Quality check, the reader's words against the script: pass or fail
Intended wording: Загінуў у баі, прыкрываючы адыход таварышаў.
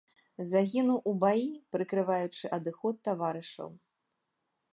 pass